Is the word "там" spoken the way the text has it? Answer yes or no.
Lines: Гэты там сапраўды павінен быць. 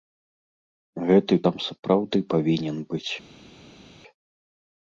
yes